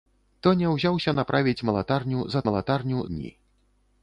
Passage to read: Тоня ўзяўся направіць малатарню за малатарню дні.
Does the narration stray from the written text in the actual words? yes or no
no